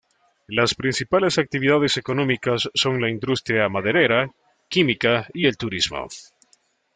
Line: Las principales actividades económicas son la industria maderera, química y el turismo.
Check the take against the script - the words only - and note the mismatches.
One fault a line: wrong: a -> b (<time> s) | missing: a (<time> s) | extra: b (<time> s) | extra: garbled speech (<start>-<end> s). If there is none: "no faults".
no faults